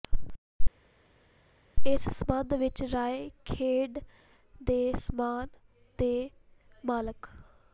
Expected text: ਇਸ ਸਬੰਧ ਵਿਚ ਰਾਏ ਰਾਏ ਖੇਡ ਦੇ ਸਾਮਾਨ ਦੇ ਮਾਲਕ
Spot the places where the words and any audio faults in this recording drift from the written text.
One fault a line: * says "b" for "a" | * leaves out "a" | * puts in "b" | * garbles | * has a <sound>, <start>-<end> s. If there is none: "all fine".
* leaves out "ਰਾਏ"